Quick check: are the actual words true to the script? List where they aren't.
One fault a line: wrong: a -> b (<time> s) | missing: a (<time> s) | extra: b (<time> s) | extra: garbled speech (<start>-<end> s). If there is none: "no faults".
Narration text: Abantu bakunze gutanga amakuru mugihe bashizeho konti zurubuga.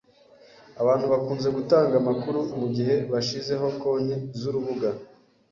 no faults